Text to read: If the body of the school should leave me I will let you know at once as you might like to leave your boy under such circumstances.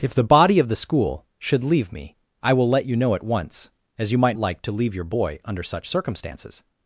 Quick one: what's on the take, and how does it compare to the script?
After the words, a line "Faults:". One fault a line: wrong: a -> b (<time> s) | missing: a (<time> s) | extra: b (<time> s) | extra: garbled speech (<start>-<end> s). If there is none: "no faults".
If the body of the school should leave me I will let you know at once as you might like to leave your boy under such circumstances.
Faults:
no faults